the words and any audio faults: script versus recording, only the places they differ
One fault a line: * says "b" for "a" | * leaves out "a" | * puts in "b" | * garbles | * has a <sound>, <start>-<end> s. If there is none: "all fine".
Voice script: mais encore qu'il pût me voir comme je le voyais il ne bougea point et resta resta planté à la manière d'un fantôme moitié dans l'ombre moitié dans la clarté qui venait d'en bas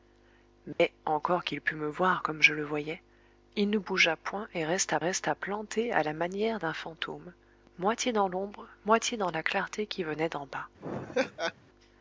* has a dropout, 0.7-0.8 s
* has a laugh, 10.8-11.5 s